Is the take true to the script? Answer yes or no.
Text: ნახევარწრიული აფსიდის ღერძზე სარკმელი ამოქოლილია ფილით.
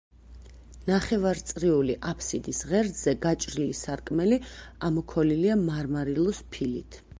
no